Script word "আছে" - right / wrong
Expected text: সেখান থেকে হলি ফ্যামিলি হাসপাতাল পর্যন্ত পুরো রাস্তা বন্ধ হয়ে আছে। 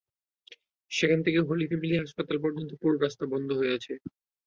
right